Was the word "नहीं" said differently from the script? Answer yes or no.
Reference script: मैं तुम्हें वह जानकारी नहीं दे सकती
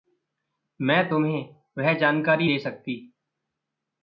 yes